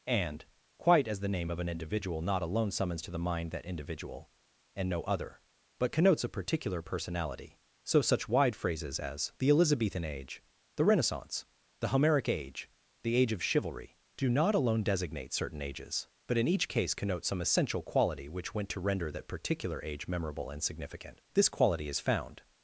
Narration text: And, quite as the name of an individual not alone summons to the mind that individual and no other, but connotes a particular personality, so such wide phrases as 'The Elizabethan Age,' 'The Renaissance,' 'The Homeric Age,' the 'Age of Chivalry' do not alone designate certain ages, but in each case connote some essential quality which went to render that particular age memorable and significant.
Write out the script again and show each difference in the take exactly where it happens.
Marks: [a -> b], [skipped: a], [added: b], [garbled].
And, quite as the name of an individual not alone summons to the mind that individual and no other, but connotes a particular personality, so such wide phrases as 'The Elizabethan Age,' 'The Renaissance,' 'The Homeric Age,' the 'Age of Chivalry' do not alone designate certain ages, but in each case connote some essential quality which went to render that particular age memorable and significant. [added: This quality is found]